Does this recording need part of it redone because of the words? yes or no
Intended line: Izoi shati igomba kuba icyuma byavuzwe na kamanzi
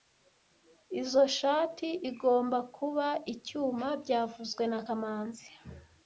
no